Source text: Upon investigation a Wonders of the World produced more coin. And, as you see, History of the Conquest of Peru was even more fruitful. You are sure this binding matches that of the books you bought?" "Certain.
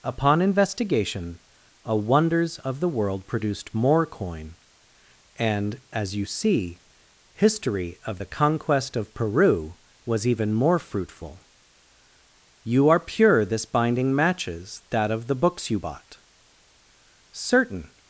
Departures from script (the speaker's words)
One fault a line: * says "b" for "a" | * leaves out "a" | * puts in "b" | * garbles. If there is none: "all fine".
* says "pure" for "sure"